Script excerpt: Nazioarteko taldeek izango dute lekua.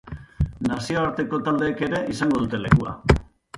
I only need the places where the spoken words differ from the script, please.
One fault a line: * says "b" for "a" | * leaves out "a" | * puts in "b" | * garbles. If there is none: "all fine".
* puts in "ere"